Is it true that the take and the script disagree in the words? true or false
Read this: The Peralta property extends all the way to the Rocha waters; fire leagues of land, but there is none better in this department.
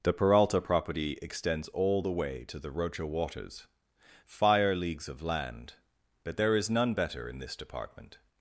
false